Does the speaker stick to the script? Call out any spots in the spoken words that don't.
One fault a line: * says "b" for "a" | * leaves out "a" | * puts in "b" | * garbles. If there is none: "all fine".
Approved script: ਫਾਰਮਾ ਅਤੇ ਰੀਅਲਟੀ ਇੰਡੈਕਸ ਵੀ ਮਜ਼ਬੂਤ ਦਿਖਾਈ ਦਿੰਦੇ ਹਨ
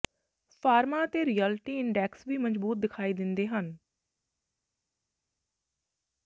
all fine